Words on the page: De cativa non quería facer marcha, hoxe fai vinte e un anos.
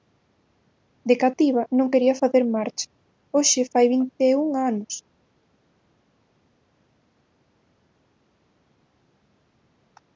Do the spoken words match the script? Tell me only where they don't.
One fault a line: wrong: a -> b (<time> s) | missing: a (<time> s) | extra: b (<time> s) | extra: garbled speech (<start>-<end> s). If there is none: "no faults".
no faults